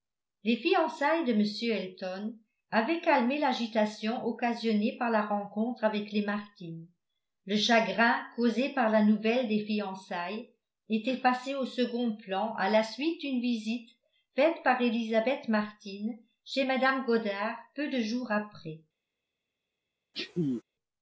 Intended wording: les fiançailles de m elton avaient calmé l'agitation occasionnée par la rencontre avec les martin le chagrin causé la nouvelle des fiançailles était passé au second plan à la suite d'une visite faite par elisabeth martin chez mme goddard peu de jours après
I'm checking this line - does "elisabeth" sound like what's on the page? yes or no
yes